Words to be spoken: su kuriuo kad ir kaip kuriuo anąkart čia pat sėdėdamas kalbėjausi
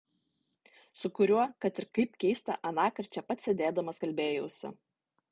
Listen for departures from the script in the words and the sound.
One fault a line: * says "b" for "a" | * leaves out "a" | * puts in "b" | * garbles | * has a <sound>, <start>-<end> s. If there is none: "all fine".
* says "keista" for "kuriuo"